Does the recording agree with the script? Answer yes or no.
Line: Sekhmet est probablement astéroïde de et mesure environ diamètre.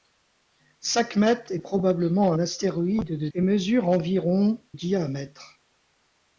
yes